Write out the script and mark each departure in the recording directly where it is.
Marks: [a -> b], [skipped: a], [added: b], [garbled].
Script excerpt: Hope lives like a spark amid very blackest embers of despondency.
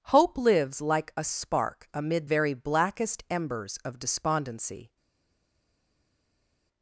Hope lives like a spark amid very blackest embers of despondency.